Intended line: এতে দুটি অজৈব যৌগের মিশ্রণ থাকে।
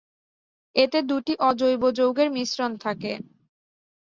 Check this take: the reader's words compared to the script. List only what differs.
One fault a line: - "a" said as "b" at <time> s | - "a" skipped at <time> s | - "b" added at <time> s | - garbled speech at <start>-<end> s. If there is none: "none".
none